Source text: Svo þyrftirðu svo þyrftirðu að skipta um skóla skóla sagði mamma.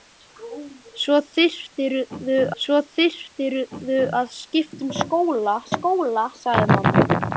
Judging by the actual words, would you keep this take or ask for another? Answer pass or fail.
pass